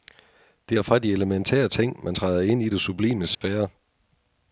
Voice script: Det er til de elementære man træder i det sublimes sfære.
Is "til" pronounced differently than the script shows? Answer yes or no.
yes